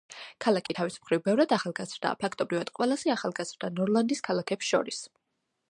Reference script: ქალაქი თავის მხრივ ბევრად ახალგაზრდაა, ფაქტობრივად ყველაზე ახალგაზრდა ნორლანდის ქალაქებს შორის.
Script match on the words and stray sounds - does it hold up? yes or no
no